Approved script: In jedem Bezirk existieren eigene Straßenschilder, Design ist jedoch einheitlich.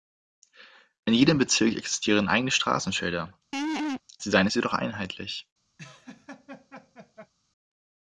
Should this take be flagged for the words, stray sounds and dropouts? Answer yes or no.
yes